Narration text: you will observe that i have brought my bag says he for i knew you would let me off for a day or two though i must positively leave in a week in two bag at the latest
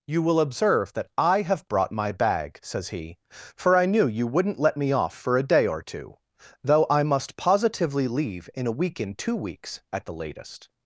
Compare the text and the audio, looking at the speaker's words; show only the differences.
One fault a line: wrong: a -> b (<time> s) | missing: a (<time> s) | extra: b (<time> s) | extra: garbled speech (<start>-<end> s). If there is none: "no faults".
wrong: would -> wouldn't (4.2 s)
wrong: bag -> weeks (9.3 s)